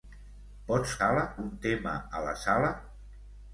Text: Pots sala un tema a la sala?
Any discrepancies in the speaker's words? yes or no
no